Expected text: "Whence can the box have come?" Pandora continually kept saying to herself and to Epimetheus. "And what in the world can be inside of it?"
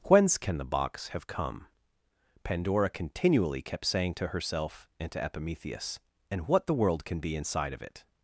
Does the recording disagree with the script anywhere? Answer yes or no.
yes